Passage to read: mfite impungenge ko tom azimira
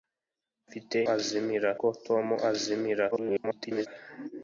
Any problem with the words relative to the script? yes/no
yes